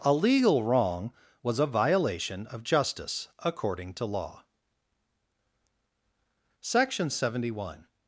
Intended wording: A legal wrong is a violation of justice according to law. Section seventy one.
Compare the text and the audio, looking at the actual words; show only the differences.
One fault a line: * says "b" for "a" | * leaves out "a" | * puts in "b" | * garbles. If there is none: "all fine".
* says "was" for "is"